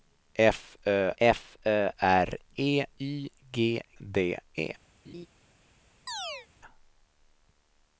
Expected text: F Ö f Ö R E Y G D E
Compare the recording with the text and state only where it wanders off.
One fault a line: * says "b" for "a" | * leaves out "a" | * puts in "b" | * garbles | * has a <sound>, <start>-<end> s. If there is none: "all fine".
* has a laugh, 5.1-5.3 s
* has a chirp, 6.1-6.5 s